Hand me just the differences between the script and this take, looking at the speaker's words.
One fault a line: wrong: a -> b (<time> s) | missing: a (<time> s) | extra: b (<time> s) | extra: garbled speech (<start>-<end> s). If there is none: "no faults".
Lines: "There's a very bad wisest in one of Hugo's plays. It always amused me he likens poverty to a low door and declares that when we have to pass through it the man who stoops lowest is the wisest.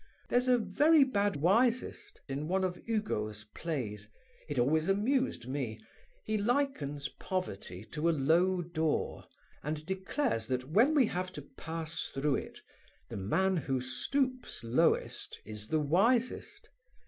no faults